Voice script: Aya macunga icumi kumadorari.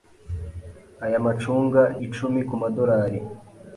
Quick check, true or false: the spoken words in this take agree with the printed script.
true